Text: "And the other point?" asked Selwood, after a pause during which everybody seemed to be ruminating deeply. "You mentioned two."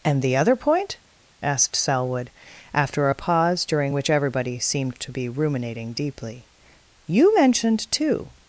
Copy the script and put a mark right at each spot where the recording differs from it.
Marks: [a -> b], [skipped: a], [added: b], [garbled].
"And the other point?" asked Selwood, after a pause during which everybody seemed to be ruminating deeply. "You mentioned two."